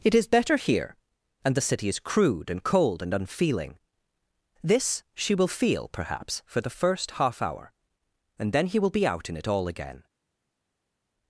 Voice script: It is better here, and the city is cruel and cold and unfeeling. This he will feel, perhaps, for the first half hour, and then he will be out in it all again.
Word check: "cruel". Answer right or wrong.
wrong